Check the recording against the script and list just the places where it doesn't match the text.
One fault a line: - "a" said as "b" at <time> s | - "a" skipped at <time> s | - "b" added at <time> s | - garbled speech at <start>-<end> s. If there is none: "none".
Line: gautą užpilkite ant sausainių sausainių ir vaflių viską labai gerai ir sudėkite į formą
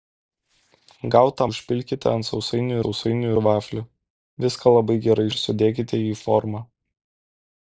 none